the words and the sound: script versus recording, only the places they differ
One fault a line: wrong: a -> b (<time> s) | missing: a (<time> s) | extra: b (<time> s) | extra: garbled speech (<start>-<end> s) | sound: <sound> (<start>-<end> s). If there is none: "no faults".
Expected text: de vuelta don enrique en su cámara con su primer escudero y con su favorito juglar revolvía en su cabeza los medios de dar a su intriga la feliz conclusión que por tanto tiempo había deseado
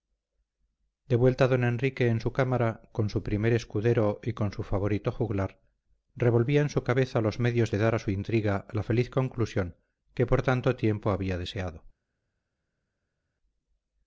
no faults